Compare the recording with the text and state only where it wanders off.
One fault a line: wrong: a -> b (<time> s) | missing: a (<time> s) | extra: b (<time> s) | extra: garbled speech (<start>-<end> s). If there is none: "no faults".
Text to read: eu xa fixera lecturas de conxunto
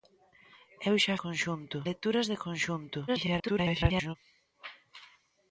wrong: fixera -> conxunto (1.2 s)
extra: garbled speech (3.1-4.2 s)